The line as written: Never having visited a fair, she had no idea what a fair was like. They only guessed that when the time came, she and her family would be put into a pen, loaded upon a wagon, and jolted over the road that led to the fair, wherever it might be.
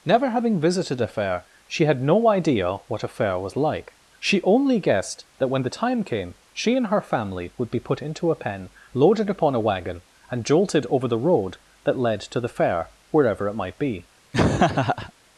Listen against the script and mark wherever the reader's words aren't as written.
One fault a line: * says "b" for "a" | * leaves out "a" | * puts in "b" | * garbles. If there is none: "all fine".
* says "She" for "They"